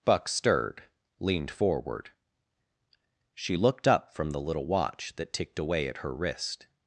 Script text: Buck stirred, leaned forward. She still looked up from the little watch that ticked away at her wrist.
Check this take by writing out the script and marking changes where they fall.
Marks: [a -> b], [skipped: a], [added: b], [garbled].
Buck stirred, leaned forward. She [skipped: still] looked up from the little watch that ticked away at her wrist.